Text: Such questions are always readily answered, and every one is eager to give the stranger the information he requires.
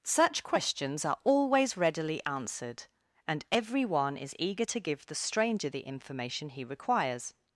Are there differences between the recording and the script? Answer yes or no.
no